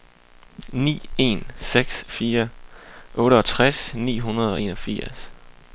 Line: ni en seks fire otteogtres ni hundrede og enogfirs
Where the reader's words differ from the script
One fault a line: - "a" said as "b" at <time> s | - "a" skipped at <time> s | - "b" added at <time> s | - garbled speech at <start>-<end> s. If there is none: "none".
none